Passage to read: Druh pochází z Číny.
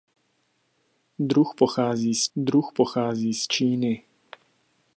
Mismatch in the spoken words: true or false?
true